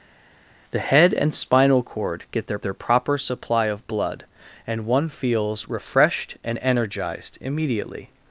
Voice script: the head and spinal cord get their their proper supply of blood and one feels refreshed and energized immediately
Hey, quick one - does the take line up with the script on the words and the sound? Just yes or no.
yes